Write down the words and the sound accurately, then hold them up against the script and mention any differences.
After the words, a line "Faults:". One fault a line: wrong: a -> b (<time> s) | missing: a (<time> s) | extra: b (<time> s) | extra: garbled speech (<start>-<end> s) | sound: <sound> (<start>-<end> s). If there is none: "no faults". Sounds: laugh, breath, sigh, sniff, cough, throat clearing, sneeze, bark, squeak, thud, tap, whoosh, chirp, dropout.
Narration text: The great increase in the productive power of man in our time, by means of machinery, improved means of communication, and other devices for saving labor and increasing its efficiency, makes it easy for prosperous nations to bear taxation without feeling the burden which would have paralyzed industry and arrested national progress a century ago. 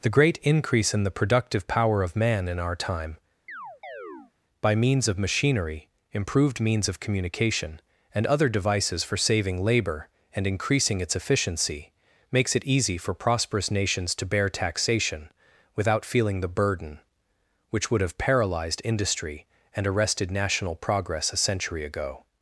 The great increase in the productive power of man in our time, by means of machinery, improved means of communication, and other devices for saving labor and increasing its efficiency, makes it easy for prosperous nations to bear taxation without feeling the burden which would have paralyzed industry and arrested national progress a century ago.
Faults:
sound: chirp (3.5-4.3 s)